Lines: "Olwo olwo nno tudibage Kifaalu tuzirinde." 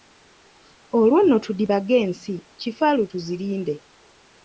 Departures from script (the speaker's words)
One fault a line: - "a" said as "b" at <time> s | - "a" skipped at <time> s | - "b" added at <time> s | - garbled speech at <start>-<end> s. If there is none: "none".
- "olwo" skipped at 1.2 s
- "ensi" added at 2.0 s